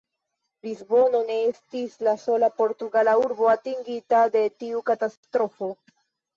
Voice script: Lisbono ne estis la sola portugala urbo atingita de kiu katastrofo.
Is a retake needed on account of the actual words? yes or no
yes